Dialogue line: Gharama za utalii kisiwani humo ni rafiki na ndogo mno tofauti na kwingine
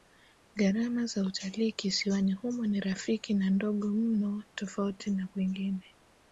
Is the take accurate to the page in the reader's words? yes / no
yes